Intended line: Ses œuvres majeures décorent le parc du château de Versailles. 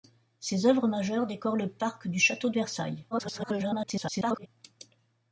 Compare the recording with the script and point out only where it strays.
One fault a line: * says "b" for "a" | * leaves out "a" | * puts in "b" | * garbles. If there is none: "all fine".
* garbles